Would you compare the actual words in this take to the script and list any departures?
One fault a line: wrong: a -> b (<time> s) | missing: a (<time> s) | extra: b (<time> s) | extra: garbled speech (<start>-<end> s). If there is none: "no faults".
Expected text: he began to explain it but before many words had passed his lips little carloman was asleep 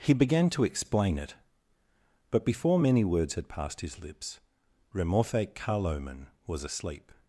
wrong: little -> remorfe (4.9 s)